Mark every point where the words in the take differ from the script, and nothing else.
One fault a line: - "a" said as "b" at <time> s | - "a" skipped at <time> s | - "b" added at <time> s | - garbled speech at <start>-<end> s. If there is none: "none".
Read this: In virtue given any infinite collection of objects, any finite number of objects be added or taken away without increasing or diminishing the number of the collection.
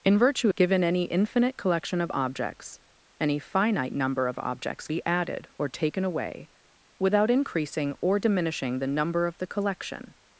none